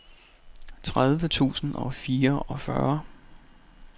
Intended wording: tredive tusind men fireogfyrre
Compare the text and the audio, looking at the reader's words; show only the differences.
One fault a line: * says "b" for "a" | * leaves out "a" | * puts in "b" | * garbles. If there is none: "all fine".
* says "og" for "men"